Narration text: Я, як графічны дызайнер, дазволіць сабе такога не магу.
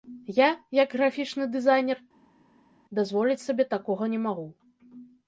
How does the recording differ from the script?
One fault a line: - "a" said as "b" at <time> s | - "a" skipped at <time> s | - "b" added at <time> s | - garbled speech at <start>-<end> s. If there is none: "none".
none